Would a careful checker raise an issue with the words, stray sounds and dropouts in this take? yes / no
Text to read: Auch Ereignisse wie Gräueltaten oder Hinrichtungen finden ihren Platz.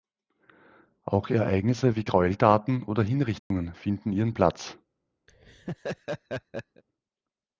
yes